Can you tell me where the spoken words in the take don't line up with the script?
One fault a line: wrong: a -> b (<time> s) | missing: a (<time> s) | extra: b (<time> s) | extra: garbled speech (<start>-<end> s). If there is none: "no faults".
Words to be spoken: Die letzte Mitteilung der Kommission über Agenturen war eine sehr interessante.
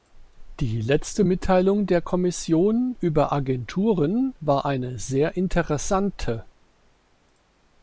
no faults